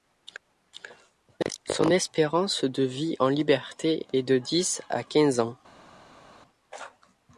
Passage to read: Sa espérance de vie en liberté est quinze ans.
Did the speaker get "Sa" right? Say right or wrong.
wrong